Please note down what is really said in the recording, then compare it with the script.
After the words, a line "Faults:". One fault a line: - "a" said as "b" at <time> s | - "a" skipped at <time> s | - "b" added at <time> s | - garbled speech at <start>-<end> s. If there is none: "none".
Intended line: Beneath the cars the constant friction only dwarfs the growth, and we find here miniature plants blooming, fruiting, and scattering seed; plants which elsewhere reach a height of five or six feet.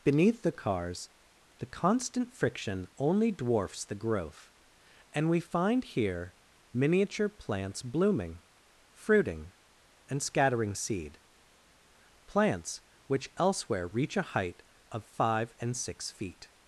Beneath the cars the constant friction only dwarfs the growth, and we find here miniature plants blooming, fruiting, and scattering seed; plants which elsewhere reach a height of five and six feet.
Faults:
- "or" said as "and" at 15.6 s